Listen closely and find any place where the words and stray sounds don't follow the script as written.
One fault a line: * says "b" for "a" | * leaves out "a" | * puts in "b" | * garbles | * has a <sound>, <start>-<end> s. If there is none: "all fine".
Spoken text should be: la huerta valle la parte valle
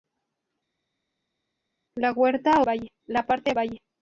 all fine